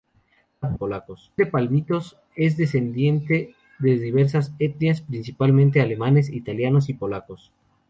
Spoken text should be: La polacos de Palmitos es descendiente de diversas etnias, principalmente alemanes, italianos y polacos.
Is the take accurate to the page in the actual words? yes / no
yes